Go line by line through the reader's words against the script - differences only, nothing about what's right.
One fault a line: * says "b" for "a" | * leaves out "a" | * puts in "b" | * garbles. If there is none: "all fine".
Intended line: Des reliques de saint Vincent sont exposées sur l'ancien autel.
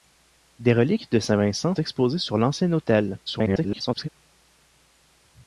* leaves out "sont"
* garbles